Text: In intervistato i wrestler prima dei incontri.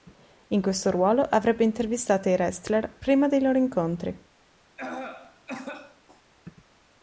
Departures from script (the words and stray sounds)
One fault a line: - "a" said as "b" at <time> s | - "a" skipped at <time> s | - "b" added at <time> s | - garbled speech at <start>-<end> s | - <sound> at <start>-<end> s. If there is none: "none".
- "questo ruolo avrebbe" added at 0.6 s
- "loro" added at 3.4 s
- cough at 4.8-6.2 s